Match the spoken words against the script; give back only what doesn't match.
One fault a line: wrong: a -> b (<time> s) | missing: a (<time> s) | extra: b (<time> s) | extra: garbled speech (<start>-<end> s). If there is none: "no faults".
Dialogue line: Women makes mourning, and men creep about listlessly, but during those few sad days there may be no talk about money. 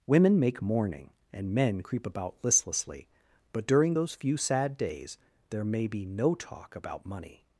wrong: makes -> make (0.4 s)